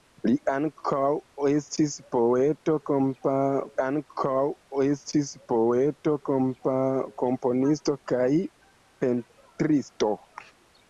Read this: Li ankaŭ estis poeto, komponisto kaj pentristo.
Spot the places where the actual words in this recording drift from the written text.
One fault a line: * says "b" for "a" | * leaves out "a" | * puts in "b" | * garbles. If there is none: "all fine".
* puts in "ankaŭ estis poeto"